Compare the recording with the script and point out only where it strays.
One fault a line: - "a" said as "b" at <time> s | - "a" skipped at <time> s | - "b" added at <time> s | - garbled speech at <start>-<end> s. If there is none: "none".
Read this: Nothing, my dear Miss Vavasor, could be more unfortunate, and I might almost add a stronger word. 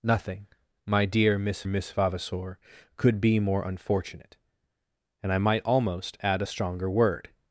- "Miss" added at 1.6 s